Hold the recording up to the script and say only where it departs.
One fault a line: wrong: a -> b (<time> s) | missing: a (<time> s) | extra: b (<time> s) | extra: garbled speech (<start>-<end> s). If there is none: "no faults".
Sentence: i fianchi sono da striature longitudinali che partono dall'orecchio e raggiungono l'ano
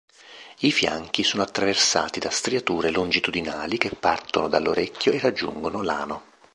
extra: attraversati (1.4 s)